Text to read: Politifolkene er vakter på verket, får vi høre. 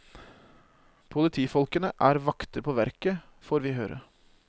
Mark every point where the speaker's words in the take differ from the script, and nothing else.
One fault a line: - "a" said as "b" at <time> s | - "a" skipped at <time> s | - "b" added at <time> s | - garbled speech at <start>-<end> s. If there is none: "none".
none